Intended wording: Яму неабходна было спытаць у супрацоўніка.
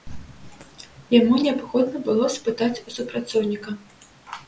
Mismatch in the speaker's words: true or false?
false